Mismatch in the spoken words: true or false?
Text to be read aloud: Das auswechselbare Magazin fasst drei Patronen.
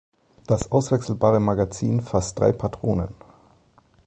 false